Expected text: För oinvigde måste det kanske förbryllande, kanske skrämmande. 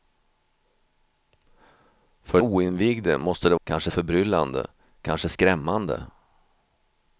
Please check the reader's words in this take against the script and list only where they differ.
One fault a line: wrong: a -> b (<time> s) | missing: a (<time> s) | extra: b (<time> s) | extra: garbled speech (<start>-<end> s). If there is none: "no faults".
no faults